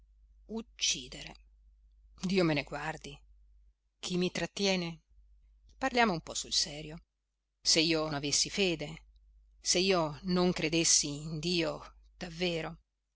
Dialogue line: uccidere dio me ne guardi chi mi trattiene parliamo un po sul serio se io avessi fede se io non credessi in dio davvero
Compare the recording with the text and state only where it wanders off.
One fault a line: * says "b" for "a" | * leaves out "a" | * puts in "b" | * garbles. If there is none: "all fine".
all fine